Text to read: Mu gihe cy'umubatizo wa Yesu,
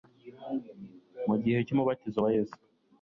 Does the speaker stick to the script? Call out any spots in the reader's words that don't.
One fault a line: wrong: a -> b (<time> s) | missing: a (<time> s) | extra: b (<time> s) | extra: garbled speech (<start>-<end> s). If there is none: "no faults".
no faults